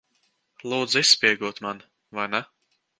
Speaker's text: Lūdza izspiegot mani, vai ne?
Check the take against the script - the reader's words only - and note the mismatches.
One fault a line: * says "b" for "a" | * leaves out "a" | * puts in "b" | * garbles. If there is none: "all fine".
all fine